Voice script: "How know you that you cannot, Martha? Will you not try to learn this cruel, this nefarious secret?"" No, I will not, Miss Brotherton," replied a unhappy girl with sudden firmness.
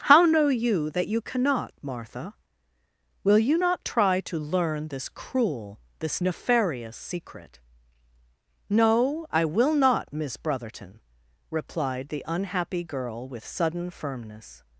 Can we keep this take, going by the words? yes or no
no